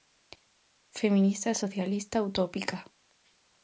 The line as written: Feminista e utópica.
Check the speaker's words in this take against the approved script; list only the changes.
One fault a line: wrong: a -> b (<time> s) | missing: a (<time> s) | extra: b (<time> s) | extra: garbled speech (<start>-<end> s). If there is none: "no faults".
extra: socialista (1.6 s)